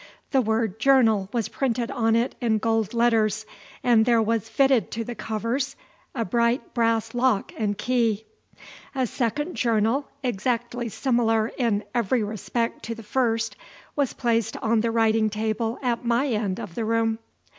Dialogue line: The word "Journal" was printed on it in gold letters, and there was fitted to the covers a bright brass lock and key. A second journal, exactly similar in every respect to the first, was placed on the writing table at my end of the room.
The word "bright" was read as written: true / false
true